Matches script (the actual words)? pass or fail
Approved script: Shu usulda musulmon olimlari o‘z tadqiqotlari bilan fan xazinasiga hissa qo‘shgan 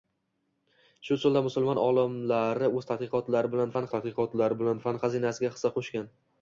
fail